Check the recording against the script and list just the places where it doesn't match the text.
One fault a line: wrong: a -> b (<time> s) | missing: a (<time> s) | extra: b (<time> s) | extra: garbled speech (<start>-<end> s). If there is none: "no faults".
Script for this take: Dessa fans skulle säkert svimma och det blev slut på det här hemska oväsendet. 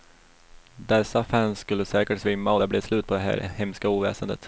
no faults